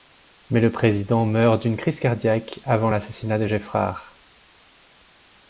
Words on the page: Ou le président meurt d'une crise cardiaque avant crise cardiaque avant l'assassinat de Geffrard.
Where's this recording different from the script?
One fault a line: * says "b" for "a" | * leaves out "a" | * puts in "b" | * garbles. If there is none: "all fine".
* says "Mais" for "Ou"
* leaves out "crise cardiaque avant"